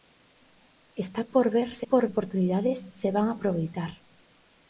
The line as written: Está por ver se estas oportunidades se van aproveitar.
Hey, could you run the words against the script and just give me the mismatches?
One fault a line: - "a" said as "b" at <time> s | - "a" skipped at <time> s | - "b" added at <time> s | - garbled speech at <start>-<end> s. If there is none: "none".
- "estas" said as "por" at 1.8 s